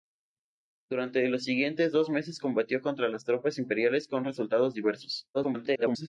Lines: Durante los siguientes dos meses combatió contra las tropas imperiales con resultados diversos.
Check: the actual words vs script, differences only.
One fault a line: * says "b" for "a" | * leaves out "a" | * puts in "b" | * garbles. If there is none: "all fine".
* garbles